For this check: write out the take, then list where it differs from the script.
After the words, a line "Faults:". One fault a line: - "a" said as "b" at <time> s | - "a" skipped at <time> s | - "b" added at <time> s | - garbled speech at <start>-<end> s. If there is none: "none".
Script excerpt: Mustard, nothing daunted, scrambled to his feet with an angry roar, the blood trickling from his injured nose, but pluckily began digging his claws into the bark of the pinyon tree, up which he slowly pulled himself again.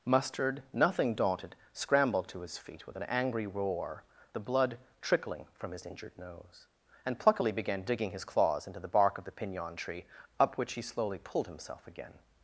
Mustard, nothing daunted, scrambled to his feet with an angry roar, the blood trickling from his injured nose, and pluckily began digging his claws into the bark of the pinyon tree, up which he slowly pulled himself again.
Faults:
- "but" said as "and" at 7.0 s